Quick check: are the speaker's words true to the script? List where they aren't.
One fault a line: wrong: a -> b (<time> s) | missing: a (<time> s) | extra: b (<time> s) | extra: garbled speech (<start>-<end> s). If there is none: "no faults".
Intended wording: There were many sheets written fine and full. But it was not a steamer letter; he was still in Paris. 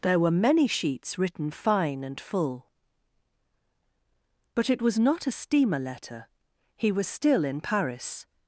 no faults